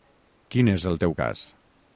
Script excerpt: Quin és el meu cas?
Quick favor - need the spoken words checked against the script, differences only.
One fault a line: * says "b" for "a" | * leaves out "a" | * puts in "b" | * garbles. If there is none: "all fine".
* says "teu" for "meu"